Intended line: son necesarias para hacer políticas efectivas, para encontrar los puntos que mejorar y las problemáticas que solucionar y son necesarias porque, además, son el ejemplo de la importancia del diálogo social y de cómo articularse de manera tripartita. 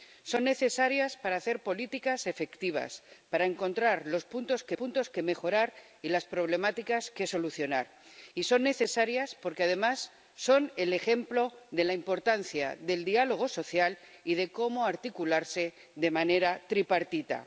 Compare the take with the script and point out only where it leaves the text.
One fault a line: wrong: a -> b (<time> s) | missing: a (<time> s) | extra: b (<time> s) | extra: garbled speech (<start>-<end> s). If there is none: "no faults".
extra: puntos que (4.7 s)